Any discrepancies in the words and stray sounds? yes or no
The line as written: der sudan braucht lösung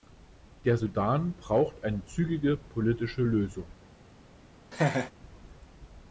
yes